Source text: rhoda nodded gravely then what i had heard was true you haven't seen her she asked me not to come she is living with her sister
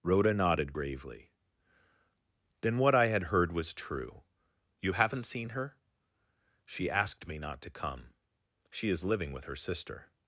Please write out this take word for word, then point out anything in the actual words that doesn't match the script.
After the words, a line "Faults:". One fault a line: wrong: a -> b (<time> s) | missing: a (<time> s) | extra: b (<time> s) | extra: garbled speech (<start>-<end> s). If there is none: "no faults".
rhoda nodded gravely then what i had heard was true you haven't seen her she asked me not to come she is living with her sister
Faults:
no faults